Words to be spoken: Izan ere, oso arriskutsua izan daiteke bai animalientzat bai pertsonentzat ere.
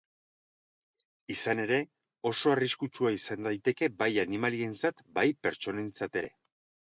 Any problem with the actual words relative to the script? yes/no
no